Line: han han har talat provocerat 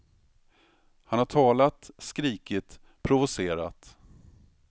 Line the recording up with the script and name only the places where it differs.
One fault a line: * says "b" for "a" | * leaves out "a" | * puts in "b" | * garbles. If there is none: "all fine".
* leaves out "han"
* puts in "skrikit"